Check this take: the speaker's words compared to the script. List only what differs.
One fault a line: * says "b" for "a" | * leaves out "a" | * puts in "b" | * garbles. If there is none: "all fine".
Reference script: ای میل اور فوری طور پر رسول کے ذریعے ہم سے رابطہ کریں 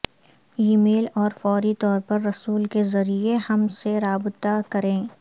all fine